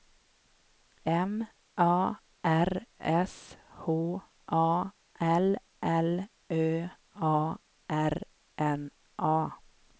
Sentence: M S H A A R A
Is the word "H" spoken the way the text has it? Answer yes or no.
yes